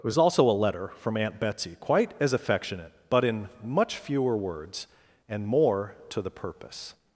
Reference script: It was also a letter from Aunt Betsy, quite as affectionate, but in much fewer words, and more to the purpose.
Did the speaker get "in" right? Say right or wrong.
right